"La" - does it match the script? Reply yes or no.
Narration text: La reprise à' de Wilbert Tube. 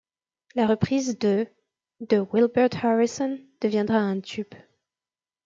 yes